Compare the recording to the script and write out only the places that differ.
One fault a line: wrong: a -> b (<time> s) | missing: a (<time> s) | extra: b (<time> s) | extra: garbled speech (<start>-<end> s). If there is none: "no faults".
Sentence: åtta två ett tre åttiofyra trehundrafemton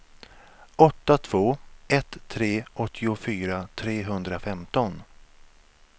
no faults